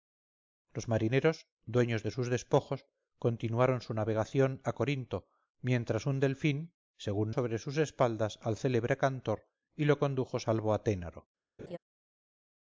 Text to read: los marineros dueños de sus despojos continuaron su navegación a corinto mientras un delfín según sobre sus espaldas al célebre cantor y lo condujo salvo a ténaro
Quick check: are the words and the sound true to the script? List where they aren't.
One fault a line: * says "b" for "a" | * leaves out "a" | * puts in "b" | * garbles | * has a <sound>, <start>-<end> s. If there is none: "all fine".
* has a laugh, 11.6-11.8 s